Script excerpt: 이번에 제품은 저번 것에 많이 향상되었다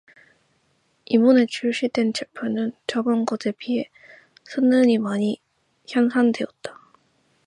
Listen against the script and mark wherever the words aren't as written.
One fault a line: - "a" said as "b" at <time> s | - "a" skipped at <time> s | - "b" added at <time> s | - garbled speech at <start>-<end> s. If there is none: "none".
- "출시된" added at 1.4 s
- "비해 성능이" added at 3.5 s